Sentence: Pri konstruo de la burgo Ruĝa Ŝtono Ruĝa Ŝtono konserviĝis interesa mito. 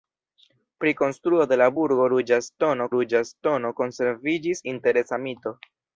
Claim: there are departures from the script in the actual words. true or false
false